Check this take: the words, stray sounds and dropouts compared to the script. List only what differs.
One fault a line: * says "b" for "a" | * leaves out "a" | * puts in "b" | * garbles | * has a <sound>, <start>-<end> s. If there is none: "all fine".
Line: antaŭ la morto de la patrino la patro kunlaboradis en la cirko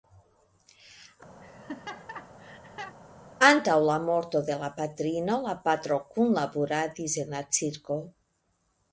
* has a laugh, 1.4-3.0 s